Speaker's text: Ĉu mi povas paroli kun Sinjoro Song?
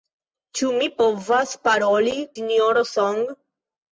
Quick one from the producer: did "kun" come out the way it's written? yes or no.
no